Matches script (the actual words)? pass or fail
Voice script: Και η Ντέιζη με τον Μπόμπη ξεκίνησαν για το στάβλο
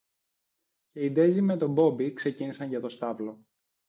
pass